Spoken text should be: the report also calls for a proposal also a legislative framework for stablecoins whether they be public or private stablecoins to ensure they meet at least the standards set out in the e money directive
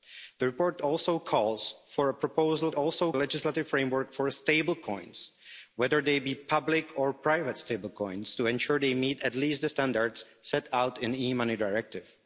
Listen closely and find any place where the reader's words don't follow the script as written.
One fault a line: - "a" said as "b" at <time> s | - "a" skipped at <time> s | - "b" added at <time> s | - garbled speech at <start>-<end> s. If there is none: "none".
none